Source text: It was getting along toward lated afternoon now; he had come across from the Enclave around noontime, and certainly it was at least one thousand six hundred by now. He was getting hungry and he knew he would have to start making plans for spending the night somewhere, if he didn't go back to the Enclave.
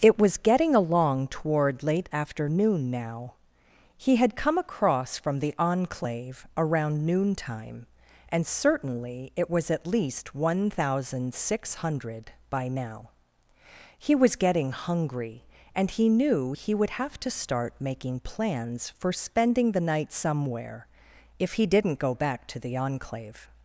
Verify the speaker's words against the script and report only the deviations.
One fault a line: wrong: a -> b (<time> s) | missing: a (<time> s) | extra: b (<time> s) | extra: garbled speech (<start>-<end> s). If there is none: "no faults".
wrong: lated -> late (1.8 s)